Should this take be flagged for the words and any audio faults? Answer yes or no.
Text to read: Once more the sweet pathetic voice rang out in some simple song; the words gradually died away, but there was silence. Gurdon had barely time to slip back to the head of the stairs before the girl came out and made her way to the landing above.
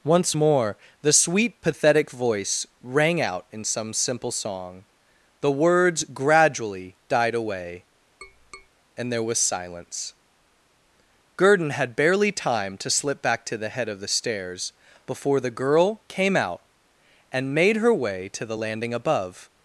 yes